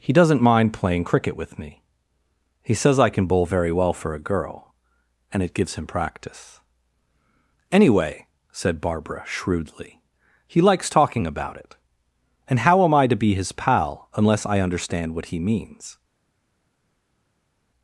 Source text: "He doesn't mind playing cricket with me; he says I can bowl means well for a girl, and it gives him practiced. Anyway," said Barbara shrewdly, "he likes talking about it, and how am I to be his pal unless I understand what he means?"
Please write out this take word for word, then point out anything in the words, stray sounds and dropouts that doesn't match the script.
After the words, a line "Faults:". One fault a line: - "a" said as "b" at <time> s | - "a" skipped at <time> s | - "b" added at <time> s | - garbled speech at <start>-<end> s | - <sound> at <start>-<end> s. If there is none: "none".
"He doesn't mind playing cricket with me; he says I can bowl very well for a girl, and it gives him practice. Anyway," said Barbara shrewdly, "he likes talking about it, and how am I to be his pal unless I understand what he means?"
Faults:
- "means" said as "very" at 3.5 s
- "practiced" said as "practice" at 5.9 s